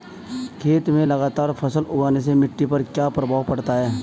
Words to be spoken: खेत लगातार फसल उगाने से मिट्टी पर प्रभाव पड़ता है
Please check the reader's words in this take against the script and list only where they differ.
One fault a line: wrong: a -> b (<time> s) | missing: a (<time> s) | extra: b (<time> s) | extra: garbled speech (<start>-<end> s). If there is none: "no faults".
extra: में (0.9 s)
extra: क्या (2.8 s)